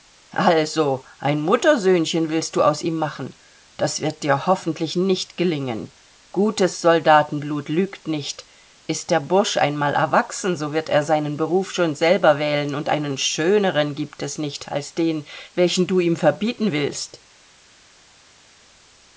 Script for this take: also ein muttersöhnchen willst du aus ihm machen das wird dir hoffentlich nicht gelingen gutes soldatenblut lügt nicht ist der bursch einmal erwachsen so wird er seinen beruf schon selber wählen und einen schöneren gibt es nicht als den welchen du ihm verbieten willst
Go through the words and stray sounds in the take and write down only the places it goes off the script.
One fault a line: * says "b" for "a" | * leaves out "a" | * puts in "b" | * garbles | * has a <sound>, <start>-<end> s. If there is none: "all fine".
all fine